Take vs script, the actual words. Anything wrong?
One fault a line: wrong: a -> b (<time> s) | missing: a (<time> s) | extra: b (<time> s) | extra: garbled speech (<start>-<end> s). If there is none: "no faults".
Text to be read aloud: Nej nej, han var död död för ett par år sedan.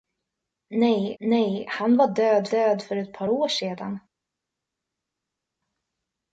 no faults